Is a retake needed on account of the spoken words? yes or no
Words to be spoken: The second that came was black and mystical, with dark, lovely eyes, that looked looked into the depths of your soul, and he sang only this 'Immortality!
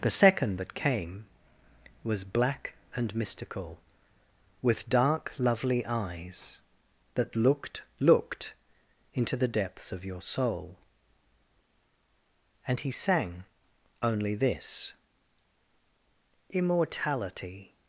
no